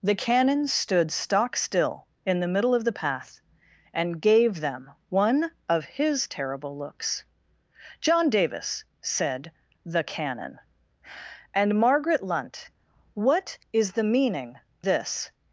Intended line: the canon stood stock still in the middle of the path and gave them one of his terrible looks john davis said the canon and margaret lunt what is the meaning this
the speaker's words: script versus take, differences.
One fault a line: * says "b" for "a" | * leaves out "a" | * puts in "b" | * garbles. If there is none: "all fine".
all fine